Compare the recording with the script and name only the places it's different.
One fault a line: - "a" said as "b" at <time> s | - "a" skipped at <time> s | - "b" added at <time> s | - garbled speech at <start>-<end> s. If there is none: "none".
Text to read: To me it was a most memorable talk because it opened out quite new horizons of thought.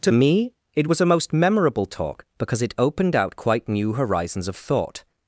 none